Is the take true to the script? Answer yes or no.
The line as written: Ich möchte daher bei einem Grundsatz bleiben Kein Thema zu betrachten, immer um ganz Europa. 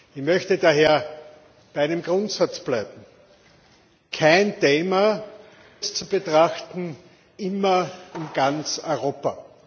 yes